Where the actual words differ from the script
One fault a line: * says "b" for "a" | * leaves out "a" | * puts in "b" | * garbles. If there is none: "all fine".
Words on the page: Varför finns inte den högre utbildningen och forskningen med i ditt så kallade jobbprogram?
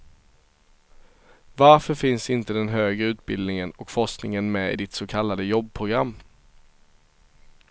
all fine